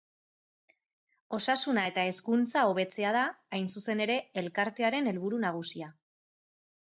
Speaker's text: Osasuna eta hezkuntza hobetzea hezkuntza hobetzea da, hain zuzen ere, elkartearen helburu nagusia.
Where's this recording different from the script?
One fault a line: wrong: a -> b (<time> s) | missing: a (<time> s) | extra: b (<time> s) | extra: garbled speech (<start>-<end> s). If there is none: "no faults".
missing: hezkuntza hobetzea (3.1 s)